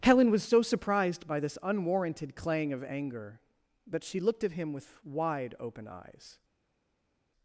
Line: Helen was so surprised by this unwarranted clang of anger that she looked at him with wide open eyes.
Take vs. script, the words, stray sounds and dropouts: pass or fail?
pass